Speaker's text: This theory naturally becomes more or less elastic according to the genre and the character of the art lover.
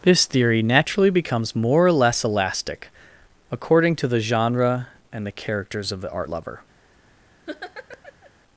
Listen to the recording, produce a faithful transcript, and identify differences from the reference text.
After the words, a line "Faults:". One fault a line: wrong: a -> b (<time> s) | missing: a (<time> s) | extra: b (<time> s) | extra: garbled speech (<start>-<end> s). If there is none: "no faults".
This theory naturally becomes more or less elastic according to the genre and the characters of the art lover.
Faults:
wrong: character -> characters (5.3 s)